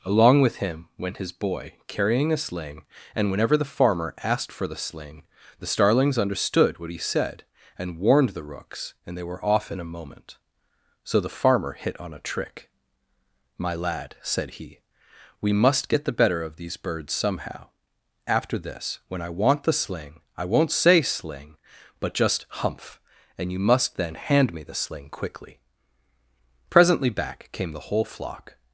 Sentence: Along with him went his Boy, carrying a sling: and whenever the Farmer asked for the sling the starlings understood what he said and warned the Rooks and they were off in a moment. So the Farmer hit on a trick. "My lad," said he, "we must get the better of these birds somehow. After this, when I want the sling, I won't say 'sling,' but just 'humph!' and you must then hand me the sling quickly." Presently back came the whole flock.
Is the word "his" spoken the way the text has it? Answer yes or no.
yes